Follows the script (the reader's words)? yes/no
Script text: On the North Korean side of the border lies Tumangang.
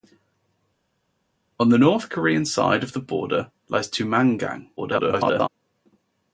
no